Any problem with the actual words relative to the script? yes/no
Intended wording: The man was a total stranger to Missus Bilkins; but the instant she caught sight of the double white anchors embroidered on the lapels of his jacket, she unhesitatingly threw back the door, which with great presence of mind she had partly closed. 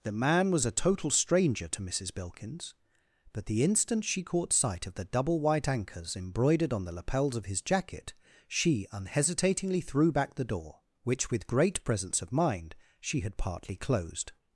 no